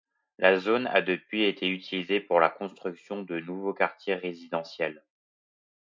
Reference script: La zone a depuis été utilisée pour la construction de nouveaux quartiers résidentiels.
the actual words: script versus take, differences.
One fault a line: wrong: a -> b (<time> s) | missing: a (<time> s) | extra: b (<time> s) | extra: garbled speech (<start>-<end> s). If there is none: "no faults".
no faults